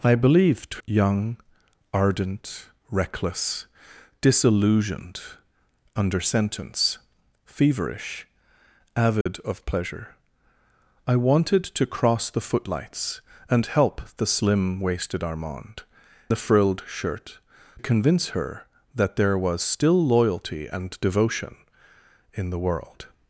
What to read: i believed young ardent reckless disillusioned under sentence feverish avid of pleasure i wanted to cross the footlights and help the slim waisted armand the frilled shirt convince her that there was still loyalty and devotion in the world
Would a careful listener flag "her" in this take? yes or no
no